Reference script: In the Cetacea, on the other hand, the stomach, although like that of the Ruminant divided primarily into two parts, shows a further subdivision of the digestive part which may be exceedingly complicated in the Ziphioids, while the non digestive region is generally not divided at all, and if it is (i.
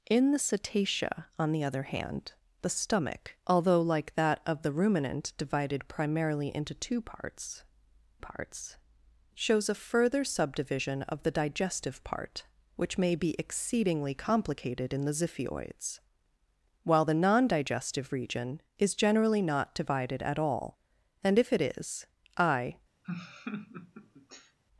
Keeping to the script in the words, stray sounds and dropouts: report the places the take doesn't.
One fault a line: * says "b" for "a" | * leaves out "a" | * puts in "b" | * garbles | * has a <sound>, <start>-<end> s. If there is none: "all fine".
* puts in "parts"
* has a laugh, 23.0-24.6 s